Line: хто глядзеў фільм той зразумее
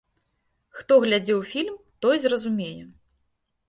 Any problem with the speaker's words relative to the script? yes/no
no